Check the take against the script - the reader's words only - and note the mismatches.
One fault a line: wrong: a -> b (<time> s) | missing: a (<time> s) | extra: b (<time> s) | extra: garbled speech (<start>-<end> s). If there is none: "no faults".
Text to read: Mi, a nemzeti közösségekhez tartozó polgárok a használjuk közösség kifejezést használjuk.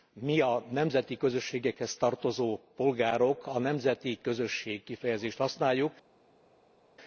wrong: használjuk -> nemzeti (3.6 s)